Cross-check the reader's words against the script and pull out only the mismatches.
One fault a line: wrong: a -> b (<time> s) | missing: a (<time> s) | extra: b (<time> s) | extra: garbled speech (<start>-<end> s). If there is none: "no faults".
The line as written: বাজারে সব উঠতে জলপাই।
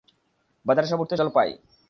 no faults